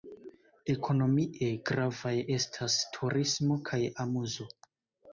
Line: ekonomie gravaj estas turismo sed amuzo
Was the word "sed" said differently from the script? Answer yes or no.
yes